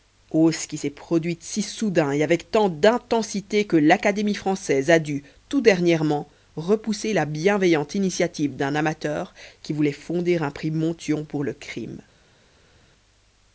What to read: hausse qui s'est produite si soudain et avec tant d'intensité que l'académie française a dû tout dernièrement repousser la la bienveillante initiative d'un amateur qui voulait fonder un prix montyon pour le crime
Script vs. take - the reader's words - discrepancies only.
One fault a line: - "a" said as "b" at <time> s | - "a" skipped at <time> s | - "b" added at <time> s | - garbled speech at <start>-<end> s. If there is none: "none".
- "la" skipped at 7.2 s